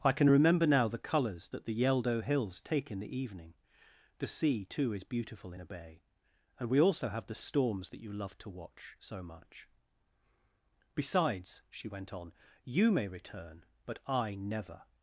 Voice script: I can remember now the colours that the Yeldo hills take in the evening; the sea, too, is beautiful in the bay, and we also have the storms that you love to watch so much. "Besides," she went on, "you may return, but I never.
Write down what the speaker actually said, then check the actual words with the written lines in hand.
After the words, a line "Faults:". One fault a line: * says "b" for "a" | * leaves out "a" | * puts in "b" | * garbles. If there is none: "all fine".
I can remember now the colours that the Yeldo hills take in the evening; the sea, too, is beautiful in a bay, and we also have the storms that you love to watch so much. "Besides," she went on, "you may return, but I never.
Faults:
* says "a" for "the"